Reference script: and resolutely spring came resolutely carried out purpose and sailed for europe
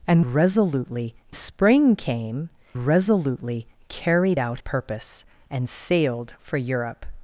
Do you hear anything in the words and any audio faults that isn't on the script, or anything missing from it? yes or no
no